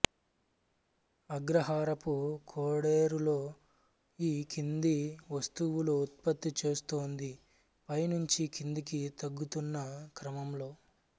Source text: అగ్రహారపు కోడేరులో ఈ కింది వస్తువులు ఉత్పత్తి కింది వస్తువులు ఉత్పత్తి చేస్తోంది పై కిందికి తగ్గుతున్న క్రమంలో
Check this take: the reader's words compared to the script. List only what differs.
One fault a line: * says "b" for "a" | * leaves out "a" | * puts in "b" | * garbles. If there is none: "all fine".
* leaves out "కింది వస్తువులు ఉత్పత్తి"
* puts in "నుంచి"